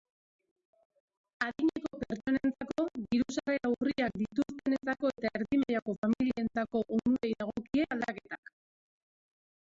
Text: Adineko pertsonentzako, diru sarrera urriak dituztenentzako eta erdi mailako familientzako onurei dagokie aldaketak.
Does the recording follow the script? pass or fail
pass